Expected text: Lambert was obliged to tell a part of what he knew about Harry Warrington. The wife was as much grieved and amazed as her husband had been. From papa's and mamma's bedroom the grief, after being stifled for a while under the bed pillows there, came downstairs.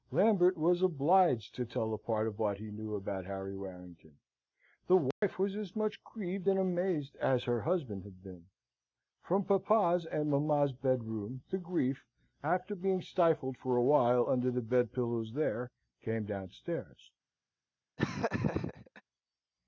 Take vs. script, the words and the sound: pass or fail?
fail